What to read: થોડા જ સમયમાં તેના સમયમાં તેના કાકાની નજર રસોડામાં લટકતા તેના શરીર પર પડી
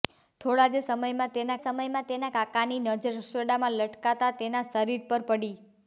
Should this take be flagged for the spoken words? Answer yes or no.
no